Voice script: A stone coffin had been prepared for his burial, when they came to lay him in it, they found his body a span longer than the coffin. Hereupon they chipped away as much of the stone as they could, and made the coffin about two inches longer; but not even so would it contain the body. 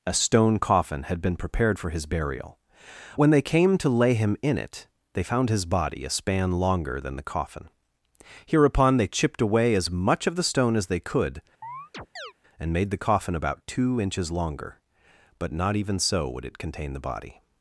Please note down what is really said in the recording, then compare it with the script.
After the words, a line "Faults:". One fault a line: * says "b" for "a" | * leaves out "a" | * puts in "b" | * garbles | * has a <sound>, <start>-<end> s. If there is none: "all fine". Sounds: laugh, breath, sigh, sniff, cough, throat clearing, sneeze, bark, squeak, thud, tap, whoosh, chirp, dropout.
A stone coffin had been prepared for his burial, when they came to lay him in it, they found his body a span longer than the coffin. Hereupon they chipped away as much of the stone as they could, and made the coffin about two inches longer; but not even so would it contain the body.
Faults:
* has a chirp, 11.6-12.3 s